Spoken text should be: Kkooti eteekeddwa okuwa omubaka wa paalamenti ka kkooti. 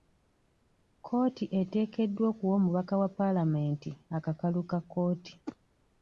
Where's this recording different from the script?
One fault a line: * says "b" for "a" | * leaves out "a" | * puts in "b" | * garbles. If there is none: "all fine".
* puts in "akakalu"